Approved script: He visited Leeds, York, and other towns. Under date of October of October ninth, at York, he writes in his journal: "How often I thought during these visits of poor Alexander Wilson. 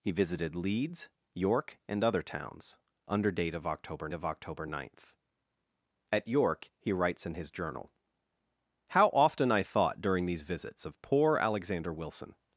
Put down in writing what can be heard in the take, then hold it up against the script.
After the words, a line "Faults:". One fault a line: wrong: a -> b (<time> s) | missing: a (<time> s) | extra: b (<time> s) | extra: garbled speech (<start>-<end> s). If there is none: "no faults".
He visited Leeds, York, and other towns. Under date of October of October ninth, at York, he writes in his journal: "How often I thought during these visits of poor Alexander Wilson.
Faults:
no faults